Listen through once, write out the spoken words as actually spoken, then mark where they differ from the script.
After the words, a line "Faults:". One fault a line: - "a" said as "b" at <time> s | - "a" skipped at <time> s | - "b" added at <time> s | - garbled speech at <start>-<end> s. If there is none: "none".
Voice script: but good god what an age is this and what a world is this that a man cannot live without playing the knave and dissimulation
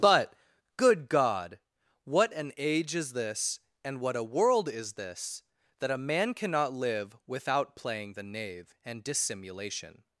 but good god what an age is this and what a world is this that a man cannot live without playing the knave and dissimulation
Faults:
none